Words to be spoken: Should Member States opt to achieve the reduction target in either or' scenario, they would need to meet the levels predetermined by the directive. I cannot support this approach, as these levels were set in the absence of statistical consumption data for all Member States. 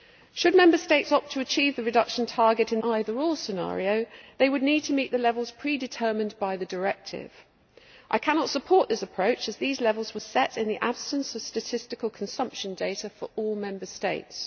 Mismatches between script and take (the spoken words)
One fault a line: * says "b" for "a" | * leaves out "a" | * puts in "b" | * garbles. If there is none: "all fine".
all fine